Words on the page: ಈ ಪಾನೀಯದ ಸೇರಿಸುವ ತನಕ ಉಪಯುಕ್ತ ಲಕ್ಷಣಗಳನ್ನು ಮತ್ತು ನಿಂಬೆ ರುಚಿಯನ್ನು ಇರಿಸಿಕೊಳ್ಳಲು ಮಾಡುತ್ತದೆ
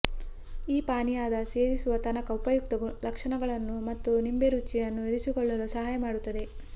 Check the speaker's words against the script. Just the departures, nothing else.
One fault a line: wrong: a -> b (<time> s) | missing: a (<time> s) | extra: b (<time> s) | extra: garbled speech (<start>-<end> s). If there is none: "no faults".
extra: ಸಹಾಯ (5.8 s)